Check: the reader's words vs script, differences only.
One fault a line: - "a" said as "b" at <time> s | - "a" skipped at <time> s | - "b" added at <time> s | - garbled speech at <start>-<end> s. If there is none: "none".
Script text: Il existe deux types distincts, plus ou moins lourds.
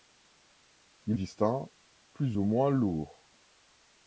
- "existe deux types" skipped at 1.2 s